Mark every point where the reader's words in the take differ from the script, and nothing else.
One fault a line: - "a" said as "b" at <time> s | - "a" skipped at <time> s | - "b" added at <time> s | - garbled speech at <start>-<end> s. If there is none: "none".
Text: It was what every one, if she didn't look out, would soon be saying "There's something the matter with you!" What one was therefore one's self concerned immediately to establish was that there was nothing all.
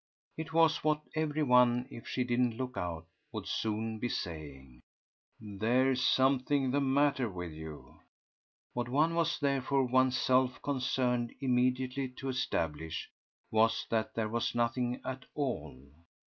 - "at" added at 15.1 s